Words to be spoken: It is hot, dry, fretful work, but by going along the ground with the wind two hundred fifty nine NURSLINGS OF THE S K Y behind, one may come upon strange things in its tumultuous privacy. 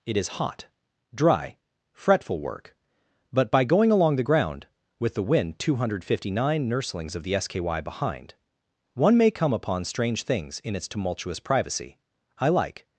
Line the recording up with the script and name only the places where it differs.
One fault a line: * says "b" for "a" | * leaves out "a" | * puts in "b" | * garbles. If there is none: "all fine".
* puts in "I like"